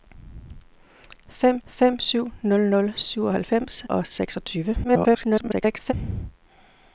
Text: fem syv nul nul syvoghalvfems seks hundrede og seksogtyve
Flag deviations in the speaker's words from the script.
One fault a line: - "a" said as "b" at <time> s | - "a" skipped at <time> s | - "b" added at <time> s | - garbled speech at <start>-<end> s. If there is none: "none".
- "fem" added at 1.6 s
- "seks hundrede" skipped at 3.8 s
- garbled speech at 4.8-5.9 s